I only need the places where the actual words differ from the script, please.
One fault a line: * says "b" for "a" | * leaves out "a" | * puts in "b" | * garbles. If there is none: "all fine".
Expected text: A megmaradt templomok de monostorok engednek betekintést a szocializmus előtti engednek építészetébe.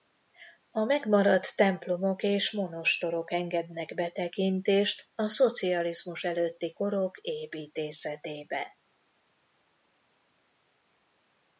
* says "és" for "de"
* says "korok" for "engednek"